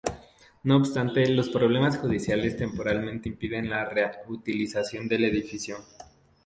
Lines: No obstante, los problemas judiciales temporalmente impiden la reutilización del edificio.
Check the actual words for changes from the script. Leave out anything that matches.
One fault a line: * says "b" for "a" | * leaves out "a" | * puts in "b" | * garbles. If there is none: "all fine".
all fine